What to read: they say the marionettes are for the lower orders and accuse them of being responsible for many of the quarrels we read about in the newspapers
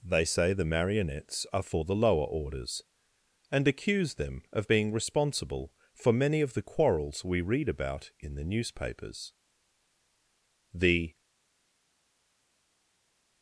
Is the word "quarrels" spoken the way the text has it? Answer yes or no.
yes